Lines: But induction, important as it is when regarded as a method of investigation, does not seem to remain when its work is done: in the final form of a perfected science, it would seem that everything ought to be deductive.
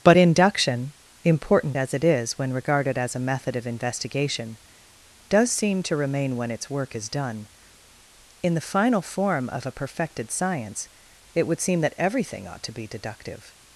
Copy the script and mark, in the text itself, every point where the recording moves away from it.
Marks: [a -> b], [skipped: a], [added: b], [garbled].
But induction, important as it is when regarded as a method of investigation, does [skipped: not] seem to remain when its work is done: in the final form of a perfected science, it would seem that everything ought to be deductive.